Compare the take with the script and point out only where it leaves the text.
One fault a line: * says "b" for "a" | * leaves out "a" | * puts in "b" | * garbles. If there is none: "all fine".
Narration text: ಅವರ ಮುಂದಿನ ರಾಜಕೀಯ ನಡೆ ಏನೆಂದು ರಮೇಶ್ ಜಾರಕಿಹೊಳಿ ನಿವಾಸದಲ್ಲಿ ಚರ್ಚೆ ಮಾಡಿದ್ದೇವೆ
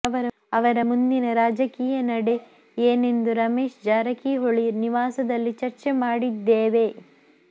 all fine